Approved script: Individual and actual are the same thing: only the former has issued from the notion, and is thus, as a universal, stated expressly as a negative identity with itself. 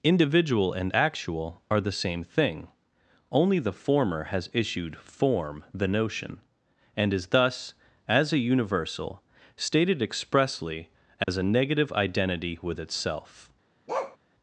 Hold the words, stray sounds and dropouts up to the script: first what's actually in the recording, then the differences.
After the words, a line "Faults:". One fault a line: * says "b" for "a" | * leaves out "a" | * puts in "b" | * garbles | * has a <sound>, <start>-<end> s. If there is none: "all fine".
Individual and actual are the same thing: only the former has issued form the notion, and is thus, as a universal, stated expressly as a negative identity with itself.
Faults:
* says "form" for "from"
* has a dropout, 11.2-11.3 s
* has a bark, 13.9-14.2 s